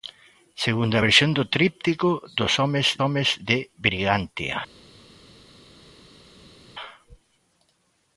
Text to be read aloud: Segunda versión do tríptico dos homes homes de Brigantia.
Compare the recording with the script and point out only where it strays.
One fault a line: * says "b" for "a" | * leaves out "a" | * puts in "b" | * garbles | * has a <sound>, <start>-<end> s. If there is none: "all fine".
all fine